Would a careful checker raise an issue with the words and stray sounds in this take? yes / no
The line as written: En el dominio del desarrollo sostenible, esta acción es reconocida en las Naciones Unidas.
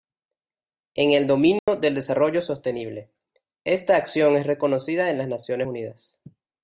yes